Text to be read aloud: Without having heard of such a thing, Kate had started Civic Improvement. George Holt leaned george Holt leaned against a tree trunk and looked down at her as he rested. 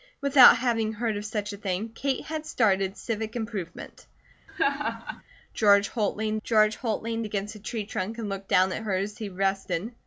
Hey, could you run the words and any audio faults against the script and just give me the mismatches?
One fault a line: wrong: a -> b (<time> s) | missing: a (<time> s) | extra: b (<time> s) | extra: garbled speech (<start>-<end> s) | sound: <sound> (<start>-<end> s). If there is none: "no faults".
sound: laugh (4.5-5.2 s)